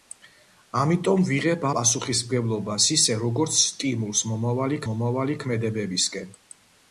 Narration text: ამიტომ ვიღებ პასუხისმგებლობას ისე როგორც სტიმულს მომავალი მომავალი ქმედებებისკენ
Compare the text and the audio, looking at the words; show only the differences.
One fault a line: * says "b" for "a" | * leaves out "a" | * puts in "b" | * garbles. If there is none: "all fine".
all fine